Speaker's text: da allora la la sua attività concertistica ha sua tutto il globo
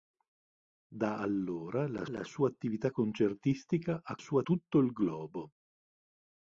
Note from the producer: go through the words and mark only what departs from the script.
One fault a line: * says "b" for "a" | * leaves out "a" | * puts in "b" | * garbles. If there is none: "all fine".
all fine